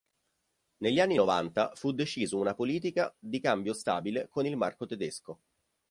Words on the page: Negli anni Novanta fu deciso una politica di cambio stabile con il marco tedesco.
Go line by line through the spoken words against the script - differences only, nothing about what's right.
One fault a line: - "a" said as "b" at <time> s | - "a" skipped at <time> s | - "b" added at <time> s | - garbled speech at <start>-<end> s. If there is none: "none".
none